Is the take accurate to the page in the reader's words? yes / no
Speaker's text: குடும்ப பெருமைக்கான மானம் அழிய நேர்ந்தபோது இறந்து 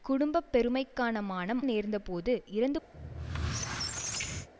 no